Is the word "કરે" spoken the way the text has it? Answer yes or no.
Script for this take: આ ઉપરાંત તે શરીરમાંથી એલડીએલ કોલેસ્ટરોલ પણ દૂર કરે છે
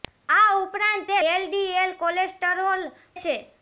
no